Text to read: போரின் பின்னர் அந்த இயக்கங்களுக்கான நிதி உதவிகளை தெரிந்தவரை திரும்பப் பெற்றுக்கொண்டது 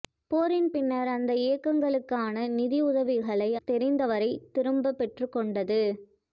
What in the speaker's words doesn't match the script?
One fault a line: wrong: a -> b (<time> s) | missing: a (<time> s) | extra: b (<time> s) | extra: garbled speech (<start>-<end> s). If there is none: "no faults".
no faults